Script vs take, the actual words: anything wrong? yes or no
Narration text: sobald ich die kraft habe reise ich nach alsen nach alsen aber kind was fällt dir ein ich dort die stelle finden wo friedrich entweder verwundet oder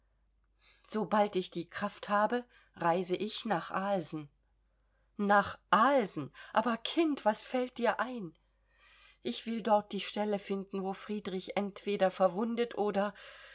yes